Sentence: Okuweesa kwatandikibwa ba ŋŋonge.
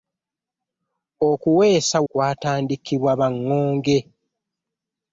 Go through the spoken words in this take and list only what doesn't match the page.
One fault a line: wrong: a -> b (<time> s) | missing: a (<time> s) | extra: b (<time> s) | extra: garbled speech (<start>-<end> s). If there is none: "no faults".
no faults